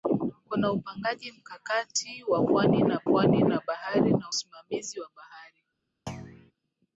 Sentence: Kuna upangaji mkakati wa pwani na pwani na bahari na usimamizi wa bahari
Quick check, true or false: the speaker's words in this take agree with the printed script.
true